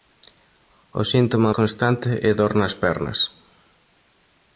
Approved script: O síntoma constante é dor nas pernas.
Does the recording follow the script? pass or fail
pass